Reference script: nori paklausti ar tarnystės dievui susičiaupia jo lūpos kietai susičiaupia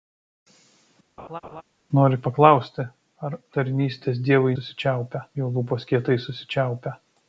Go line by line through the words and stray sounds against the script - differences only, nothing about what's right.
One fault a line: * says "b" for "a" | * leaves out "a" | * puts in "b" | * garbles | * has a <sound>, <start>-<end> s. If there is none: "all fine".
* has a laugh, 1.2-1.6 s